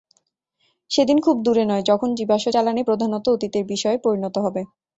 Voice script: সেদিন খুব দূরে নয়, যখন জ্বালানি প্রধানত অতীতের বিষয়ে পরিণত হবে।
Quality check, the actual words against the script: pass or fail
fail